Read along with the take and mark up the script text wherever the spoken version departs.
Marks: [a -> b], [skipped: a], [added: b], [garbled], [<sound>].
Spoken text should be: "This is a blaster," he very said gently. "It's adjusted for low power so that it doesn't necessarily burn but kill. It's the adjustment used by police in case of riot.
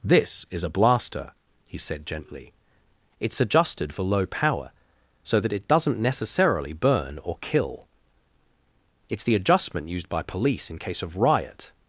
"This is a blaster," he [skipped: very] said gently. "It's adjusted for low power so that it doesn't necessarily burn [but -> or] kill. It's the adjustment used by police in case of riot.